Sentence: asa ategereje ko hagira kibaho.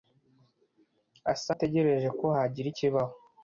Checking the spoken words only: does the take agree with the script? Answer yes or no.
yes